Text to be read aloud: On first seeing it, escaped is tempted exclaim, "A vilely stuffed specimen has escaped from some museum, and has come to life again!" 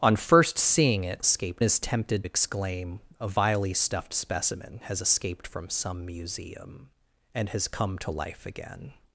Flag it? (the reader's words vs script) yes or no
no